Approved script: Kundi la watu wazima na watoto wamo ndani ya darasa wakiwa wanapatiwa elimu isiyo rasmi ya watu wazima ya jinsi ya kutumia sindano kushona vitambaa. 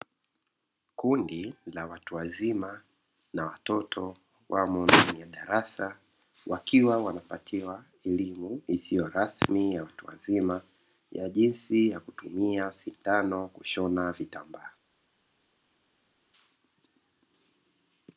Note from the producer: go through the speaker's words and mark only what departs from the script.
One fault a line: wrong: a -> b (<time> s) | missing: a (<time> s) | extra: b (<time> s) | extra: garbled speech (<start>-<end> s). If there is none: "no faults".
no faults